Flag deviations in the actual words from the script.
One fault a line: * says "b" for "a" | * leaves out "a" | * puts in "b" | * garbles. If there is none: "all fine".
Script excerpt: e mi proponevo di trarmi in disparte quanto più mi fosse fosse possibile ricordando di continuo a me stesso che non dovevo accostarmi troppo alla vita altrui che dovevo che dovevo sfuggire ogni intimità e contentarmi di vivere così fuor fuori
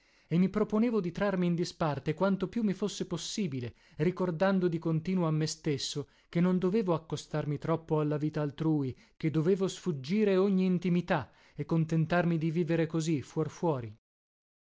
* leaves out "fosse"
* leaves out "che dovevo"